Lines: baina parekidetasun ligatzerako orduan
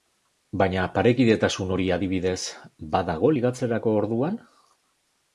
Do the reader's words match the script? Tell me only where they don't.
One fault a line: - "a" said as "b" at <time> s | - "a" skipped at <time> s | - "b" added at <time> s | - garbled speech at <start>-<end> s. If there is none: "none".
- "hori adibidez badago" added at 1.7 s